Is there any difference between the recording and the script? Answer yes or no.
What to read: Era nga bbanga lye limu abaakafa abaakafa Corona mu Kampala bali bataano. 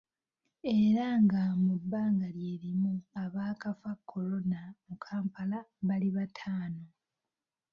yes